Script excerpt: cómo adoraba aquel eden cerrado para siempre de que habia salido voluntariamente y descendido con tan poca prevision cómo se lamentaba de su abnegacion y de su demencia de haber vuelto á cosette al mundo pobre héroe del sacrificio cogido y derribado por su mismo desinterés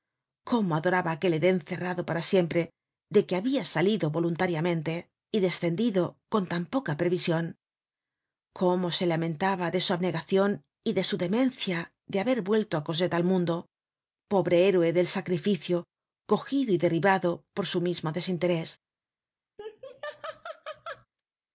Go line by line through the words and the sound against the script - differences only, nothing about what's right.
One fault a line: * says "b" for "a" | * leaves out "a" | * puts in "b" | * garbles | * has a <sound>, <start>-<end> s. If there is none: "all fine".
* has a laugh, 19.6-21.1 s